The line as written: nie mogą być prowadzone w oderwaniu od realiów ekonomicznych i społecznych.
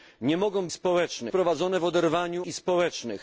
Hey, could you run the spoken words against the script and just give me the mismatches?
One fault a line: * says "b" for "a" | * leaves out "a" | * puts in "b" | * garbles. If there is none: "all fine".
* says "społecznych" for "być"
* leaves out "od realiów ekonomicznych"